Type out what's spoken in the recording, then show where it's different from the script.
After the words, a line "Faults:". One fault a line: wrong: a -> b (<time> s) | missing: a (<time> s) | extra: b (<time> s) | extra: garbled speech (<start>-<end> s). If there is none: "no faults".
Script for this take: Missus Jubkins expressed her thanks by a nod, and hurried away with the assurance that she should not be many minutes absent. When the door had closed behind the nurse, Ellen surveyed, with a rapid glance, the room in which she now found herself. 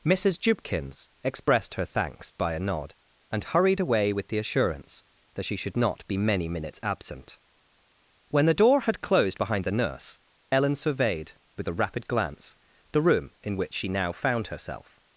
Missus Jubkins expressed her thanks by a nod, and hurried away with the assurance that she should not be many minutes absent. When the door had closed behind the nurse, Ellen surveyed, with a rapid glance, the room in which she now found herself.
Faults:
no faults